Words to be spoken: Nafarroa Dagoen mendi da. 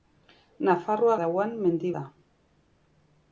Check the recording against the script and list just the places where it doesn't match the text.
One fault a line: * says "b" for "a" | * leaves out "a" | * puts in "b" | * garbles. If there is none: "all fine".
all fine